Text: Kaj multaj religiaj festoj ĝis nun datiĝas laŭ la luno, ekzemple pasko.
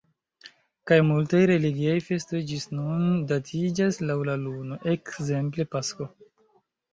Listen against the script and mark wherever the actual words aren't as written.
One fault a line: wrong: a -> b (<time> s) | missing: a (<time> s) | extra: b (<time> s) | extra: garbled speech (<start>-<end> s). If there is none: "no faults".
no faults